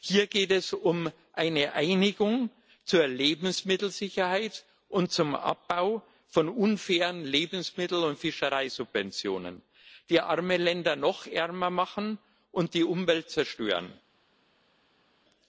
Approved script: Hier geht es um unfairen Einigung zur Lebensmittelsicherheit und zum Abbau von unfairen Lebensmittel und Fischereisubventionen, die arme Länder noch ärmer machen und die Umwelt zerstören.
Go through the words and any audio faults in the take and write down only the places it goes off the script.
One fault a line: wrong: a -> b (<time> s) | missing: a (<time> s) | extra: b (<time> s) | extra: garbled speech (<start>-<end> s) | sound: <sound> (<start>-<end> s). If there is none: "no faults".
wrong: unfairen -> eine (1.3 s)